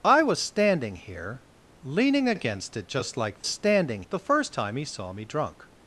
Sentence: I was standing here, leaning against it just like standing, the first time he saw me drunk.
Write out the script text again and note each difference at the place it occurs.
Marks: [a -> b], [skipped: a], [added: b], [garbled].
I was standing here, leaning against it just like standing, the first time he saw me drunk.